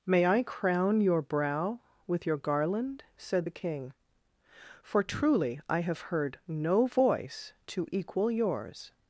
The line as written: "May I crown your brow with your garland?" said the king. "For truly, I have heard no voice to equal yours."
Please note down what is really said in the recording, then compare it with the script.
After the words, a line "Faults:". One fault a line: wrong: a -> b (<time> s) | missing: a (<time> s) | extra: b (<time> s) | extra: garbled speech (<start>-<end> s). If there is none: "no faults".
"May I crown your brow with your garland?" said the king. "For truly, I have heard no voice to equal yours."
Faults:
no faults